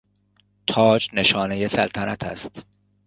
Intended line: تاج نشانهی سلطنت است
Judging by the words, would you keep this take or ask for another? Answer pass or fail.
pass